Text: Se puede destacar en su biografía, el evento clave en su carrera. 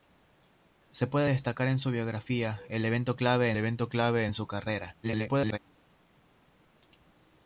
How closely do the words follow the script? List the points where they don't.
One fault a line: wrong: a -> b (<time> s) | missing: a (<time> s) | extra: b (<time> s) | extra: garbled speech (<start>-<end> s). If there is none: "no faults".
extra: evento clave (3.6 s)
extra: garbled speech (5.0-5.6 s)